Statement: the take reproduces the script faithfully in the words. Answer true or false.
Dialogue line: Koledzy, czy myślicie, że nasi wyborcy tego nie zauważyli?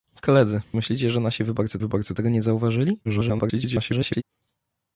false